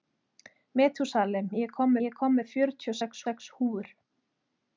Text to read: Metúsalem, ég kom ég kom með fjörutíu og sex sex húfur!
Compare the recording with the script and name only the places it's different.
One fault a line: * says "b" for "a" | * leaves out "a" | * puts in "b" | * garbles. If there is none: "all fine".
all fine